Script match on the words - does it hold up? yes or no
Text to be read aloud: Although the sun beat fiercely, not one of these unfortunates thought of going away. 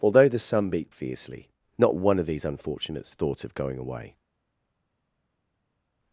yes